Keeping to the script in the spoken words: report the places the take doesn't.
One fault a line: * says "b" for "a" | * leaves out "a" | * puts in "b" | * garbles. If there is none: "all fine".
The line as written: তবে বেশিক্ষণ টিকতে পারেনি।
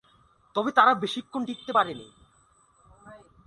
* puts in "তারা"